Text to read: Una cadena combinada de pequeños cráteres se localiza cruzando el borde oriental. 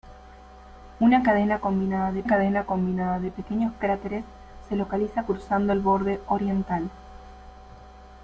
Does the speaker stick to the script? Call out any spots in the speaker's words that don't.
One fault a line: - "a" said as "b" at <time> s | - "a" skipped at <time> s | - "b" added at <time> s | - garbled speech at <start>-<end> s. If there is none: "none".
- "cadena combinada de" added at 2.2 s